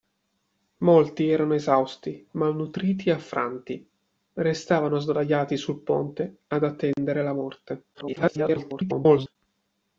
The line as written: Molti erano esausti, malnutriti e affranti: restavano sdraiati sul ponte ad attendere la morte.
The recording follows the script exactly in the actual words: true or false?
false